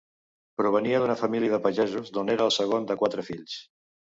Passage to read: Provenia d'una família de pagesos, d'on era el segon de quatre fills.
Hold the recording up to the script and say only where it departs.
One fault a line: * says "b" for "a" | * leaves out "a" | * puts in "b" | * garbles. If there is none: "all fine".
all fine